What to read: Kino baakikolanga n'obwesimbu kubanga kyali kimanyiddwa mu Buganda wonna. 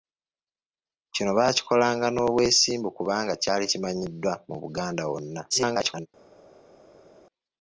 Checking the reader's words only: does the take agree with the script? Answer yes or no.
no